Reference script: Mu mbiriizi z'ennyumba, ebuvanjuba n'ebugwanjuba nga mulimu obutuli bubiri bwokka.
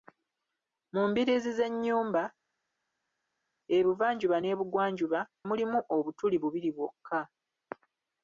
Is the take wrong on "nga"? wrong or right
wrong